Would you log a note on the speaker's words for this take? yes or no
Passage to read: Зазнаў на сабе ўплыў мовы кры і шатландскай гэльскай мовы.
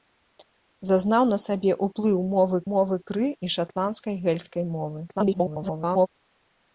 yes